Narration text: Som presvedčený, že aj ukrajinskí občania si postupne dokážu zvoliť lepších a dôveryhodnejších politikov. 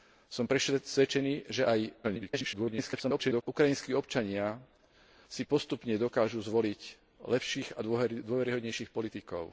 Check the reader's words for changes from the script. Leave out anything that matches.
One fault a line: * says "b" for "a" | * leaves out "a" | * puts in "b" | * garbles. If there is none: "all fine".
* garbles